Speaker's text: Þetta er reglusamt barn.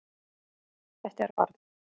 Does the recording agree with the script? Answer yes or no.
no